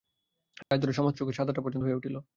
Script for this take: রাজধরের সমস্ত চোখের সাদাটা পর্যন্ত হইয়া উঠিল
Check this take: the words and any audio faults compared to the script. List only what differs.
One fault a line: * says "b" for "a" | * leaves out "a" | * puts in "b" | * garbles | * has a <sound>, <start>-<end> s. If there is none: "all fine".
* has a dropout, 0.6-0.7 s